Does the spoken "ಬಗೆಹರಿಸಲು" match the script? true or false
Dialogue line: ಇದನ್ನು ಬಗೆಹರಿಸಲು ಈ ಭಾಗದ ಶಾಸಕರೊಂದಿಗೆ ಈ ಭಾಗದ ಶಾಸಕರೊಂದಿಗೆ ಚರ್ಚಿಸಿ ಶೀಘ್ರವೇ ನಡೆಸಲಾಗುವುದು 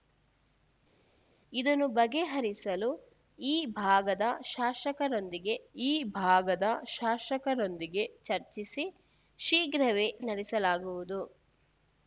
true